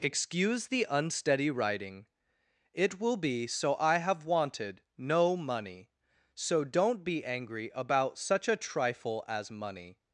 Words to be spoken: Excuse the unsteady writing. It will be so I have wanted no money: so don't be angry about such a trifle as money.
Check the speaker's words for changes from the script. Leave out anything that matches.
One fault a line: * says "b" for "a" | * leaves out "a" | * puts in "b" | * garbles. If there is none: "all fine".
all fine